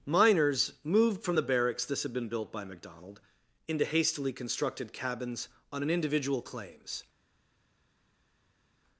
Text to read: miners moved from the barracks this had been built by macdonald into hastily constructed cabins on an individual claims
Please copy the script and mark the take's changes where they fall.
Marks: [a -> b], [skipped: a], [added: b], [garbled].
miners moved from the barracks this had been built by macdonald into hastily constructed cabins on an individual claims